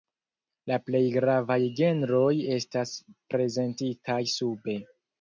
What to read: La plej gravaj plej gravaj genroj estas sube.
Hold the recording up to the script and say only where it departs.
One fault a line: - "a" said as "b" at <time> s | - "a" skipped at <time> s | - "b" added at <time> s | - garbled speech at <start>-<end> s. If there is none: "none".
- "plej gravaj" skipped at 1.6 s
- "prezentitaj" added at 3.4 s